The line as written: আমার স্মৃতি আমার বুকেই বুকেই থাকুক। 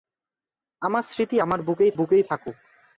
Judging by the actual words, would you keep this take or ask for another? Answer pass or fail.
pass